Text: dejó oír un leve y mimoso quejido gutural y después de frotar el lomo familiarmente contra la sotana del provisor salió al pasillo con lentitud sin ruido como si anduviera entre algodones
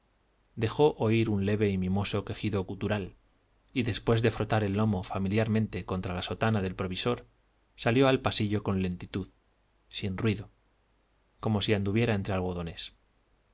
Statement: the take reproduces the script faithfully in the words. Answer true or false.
true